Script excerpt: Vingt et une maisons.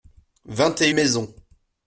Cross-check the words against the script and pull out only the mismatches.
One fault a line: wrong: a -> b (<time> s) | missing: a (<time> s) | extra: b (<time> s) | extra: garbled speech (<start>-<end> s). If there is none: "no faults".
missing: une (0.9 s)